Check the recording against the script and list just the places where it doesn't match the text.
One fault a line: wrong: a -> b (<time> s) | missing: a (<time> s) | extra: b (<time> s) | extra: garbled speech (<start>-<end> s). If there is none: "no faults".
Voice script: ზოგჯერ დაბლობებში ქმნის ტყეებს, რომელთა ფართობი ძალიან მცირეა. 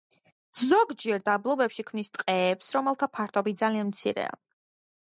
no faults